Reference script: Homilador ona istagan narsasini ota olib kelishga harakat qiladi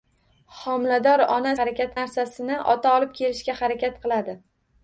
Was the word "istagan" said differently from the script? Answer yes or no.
yes